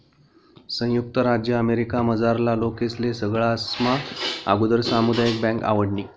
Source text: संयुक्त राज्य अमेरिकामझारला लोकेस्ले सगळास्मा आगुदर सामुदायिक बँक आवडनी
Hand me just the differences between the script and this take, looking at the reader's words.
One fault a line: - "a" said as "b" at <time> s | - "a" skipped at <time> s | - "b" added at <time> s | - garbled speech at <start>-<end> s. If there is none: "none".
none